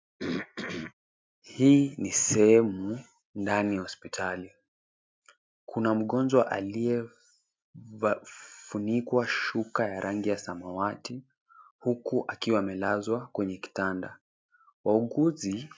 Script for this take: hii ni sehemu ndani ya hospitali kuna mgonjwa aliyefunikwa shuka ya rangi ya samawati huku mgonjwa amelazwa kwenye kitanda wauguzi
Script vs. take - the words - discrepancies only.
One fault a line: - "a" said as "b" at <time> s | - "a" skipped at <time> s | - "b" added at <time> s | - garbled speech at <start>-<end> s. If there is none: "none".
- "mgonjwa" said as "akiwa" at 12.3 s